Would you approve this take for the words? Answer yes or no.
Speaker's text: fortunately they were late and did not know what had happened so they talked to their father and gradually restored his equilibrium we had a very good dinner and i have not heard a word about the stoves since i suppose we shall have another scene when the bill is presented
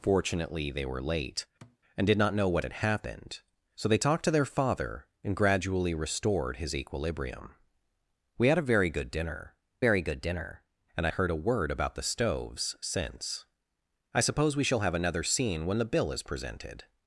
no